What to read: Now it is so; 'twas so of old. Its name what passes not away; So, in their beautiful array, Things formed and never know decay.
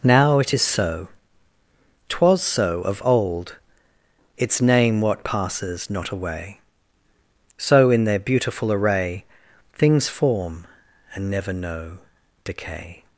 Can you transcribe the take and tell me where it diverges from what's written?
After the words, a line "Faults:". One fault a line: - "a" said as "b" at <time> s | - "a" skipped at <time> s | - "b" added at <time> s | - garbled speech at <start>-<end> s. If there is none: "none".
Now it is so; 'twas so of old. Its name what passes not away; So, in their beautiful array, Things form and never know decay.
Faults:
- "formed" said as "form" at 10.1 s